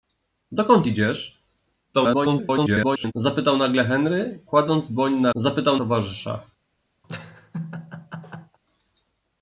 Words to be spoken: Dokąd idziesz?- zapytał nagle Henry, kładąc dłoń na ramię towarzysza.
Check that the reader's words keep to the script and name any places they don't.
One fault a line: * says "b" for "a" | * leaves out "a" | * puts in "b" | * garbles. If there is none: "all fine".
* garbles
* says "zapytał" for "ramię"